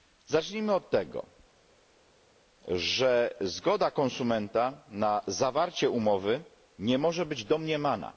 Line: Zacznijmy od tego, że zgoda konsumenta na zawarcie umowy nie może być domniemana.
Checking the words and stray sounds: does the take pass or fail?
pass